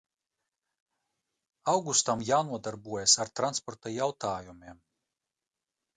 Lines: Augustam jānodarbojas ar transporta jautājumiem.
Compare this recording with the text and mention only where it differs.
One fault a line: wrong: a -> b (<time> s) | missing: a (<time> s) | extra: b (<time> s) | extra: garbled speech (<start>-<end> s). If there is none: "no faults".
no faults